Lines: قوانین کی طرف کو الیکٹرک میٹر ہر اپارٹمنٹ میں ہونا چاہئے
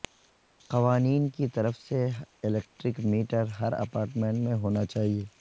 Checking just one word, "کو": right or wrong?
wrong